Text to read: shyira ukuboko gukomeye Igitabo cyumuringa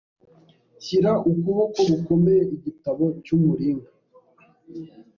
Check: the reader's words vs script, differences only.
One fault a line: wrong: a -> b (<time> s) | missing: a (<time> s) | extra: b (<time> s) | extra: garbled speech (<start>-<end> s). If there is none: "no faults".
no faults